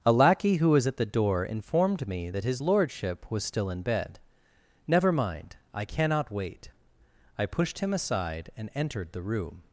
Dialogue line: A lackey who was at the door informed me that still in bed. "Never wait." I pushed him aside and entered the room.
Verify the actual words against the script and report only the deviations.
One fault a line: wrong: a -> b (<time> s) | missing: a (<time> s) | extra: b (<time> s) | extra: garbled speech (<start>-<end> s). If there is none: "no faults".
extra: his lordship was (2.4 s)
extra: mind I cannot (5.1 s)